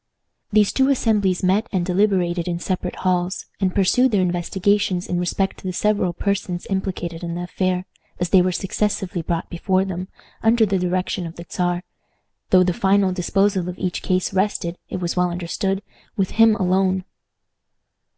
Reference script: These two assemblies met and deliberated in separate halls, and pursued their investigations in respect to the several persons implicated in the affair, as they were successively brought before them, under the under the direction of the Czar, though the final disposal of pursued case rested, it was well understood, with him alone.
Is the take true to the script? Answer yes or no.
no